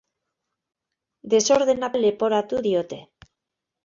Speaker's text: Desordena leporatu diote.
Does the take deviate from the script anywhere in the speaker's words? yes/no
no